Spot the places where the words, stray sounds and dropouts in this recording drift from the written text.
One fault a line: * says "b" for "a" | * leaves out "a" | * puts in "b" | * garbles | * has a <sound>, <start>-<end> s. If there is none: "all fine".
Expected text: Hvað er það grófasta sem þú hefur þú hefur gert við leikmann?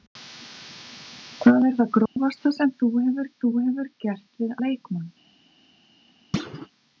* has a dropout, 2.1-2.2 s
* has a thud, 6.3-6.7 s